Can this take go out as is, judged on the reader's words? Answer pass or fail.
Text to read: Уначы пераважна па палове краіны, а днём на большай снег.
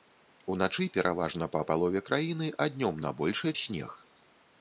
pass